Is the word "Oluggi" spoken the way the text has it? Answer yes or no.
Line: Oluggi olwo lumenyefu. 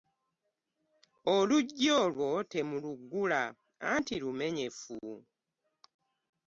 yes